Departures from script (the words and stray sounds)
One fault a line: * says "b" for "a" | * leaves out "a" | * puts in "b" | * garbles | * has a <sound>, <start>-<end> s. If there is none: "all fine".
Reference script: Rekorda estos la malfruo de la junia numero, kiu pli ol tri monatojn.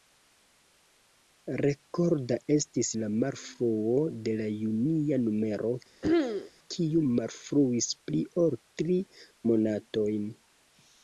* says "estis" for "estos"
* has a throat clearing, 6.0-6.5 s
* puts in "malfruis"